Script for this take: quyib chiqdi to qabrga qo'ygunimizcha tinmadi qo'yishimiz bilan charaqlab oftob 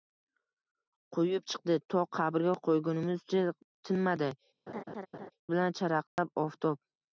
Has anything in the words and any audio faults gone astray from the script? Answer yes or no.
yes